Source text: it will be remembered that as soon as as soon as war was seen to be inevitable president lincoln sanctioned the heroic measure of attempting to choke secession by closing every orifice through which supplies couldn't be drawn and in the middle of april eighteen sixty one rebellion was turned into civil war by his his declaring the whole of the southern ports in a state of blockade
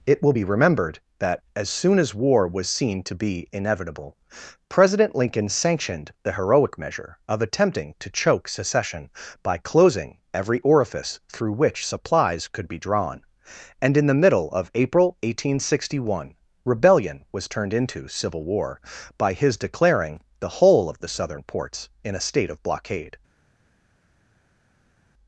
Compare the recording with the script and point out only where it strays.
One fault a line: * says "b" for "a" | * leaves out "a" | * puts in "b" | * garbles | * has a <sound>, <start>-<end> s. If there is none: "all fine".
* leaves out "as soon as"
* says "could" for "couldn't"
* leaves out "his"